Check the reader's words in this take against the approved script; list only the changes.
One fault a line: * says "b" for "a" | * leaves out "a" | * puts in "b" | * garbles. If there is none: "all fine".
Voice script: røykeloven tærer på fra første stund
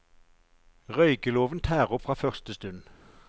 * leaves out "på"